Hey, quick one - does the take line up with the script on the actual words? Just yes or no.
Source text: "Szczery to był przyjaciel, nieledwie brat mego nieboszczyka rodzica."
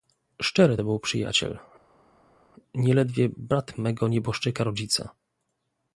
yes